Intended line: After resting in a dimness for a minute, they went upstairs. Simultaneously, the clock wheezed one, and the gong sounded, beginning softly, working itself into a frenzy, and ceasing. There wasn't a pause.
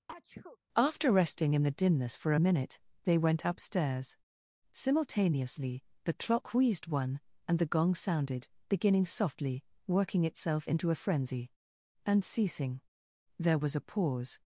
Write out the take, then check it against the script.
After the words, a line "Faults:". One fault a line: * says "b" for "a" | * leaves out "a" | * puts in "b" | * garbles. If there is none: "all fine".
After resting in the dimness for a minute, they went upstairs. Simultaneously, the clock wheezed one, and the gong sounded, beginning softly, working itself into a frenzy, and ceasing. There was a pause.
Faults:
* says "the" for "a"
* says "was" for "wasn't"